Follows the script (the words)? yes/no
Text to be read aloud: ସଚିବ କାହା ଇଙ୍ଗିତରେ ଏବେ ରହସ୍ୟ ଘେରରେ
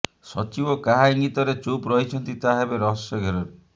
no